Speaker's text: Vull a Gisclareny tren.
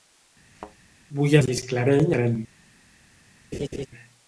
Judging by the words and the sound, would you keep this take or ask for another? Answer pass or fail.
fail